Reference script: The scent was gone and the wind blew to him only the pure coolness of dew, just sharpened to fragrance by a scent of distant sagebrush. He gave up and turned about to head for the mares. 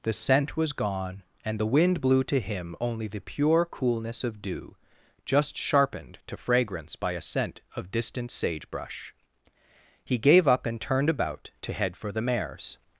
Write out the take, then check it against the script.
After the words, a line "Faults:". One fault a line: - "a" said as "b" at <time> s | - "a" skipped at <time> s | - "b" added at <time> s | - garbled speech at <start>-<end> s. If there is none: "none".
The scent was gone and the wind blew to him only the pure coolness of dew, just sharpened to fragrance by a scent of distant sagebrush. He gave up and turned about to head for the mares.
Faults:
none